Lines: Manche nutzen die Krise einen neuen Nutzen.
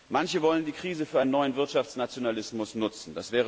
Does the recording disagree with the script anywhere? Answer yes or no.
yes